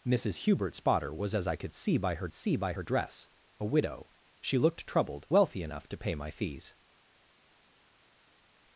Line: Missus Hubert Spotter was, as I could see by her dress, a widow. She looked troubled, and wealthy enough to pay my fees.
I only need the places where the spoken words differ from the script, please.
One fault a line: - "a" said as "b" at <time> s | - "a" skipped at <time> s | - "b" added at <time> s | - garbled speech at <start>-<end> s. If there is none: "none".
- "see by her" added at 2.3 s
- "and" skipped at 5.3 s